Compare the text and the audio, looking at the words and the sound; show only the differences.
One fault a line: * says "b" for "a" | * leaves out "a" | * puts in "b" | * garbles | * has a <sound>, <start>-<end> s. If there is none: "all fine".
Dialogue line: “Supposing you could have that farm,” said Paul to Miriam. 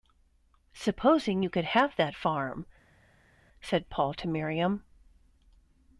all fine